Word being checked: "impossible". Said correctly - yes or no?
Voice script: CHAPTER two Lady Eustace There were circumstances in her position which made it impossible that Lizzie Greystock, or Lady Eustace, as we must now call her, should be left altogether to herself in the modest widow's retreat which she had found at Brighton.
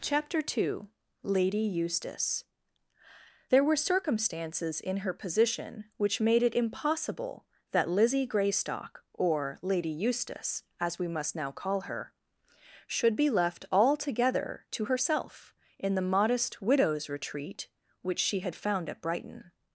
yes